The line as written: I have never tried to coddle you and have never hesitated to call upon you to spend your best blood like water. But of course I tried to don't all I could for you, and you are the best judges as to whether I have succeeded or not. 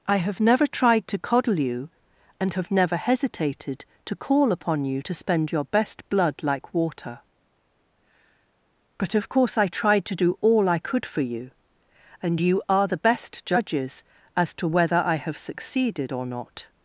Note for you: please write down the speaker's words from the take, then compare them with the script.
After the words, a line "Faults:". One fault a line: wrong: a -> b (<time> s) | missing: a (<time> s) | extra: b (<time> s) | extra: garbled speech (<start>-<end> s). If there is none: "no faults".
I have never tried to coddle you and have never hesitated to call upon you to spend your best blood like water. But of course I tried to do all I could for you, and you are the best judges as to whether I have succeeded or not.
Faults:
wrong: don't -> do (10.2 s)